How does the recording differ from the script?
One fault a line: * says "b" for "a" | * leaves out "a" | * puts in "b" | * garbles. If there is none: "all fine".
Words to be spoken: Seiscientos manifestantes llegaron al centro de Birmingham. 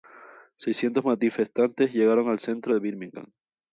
all fine